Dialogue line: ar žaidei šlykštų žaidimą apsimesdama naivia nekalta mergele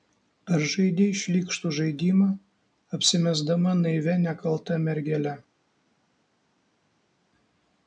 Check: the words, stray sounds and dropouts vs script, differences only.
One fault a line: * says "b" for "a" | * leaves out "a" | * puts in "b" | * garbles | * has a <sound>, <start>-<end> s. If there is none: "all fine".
all fine